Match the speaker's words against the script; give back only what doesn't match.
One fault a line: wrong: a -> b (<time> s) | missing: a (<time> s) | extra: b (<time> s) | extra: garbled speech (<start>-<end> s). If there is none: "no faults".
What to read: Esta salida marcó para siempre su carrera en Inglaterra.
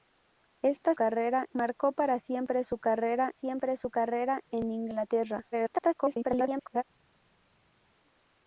wrong: salida -> carrera (0.9 s)
extra: siempre su carrera (3.3 s)
extra: garbled speech (5.5-6.8 s)